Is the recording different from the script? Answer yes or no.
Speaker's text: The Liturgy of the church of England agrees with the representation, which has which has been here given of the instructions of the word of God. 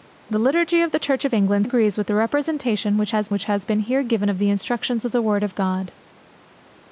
no